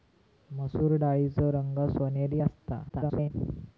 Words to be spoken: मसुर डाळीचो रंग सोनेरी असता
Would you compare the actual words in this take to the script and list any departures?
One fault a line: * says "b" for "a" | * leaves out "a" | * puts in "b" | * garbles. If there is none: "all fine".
* garbles